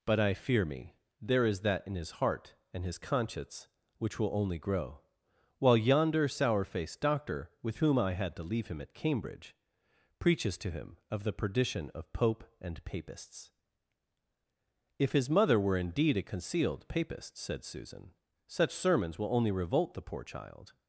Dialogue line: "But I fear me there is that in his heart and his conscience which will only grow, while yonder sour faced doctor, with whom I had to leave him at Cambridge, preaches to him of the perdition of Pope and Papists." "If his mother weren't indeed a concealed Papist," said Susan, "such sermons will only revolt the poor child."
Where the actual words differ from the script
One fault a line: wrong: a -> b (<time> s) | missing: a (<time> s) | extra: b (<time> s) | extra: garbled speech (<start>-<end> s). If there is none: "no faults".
wrong: weren't -> were (15.6 s)